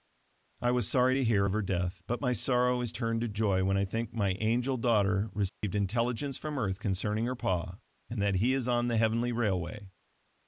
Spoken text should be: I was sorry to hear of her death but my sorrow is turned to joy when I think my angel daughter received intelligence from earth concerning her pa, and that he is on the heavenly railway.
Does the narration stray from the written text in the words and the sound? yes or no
yes